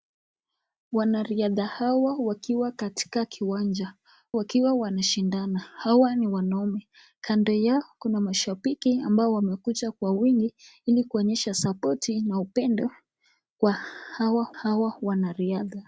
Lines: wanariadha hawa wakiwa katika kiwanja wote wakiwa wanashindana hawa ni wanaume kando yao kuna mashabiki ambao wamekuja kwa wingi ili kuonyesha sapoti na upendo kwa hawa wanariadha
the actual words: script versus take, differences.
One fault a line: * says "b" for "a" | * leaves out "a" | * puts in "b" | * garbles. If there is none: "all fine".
* leaves out "wote"
* puts in "hawa"